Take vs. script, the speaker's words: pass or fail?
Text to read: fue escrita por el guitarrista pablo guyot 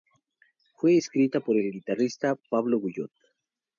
pass